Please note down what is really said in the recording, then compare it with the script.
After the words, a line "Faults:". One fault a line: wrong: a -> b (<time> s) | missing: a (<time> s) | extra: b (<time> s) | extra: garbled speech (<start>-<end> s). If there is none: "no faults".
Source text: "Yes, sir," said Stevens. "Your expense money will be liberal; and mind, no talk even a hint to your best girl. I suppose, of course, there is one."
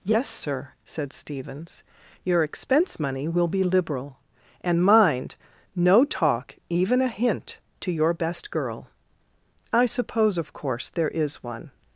"Yes, sir," said Stevens. "Your expense money will be liberal; and mind, no talk even a hint to your best girl. I suppose, of course, there is one."
Faults:
no faults